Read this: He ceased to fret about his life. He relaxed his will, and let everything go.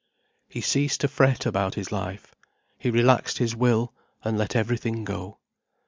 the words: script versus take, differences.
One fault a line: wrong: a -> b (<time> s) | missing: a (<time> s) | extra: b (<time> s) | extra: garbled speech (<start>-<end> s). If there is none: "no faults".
no faults